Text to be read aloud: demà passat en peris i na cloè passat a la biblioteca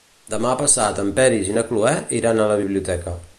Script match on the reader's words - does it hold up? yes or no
no